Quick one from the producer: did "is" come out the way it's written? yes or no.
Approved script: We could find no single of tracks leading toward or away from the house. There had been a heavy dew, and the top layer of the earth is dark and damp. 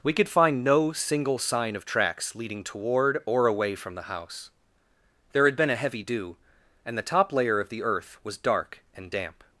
no